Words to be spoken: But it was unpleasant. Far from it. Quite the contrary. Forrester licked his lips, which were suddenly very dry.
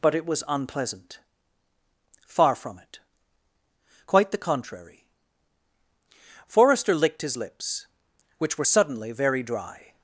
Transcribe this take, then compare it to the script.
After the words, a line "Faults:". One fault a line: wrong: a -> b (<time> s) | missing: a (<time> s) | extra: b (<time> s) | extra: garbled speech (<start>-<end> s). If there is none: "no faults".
But it was unpleasant. Far from it. Quite the contrary. Forrester licked his lips, which were suddenly very dry.
Faults:
no faults